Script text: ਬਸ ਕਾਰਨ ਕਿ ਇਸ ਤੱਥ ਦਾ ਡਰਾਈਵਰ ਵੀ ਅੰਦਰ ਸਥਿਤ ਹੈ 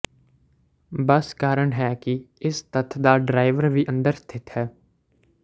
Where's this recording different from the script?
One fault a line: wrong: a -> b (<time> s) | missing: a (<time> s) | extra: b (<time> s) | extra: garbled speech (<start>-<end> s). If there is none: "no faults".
extra: ਹੈ (1.7 s)